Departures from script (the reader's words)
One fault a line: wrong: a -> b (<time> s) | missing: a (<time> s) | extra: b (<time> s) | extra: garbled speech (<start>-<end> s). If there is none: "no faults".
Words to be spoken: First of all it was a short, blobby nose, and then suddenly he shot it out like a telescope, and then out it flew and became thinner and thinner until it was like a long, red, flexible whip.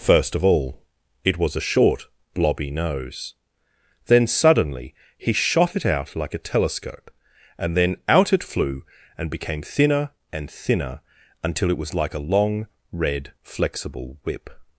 missing: and (3.4 s)